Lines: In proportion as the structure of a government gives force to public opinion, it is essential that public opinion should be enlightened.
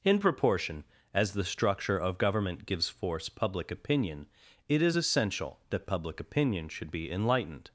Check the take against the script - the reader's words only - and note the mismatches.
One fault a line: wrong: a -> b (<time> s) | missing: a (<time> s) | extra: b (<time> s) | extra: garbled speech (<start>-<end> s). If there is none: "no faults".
missing: a (2.2 s)
missing: to (3.3 s)